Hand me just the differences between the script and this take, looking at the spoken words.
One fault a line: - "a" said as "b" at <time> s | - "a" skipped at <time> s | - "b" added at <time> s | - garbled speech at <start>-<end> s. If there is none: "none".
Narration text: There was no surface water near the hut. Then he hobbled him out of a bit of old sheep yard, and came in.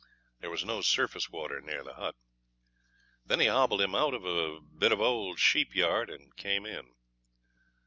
none